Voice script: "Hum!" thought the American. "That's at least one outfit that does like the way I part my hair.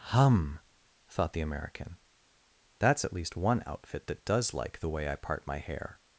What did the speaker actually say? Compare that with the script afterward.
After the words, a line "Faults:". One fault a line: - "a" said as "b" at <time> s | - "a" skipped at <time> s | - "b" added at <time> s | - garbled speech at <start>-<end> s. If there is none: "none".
"Hum!" thought the American. "That's at least one outfit that does like the way I part my hair.
Faults:
none